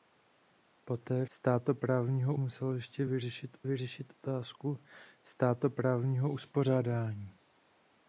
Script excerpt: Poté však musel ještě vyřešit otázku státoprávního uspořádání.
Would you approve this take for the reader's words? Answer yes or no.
no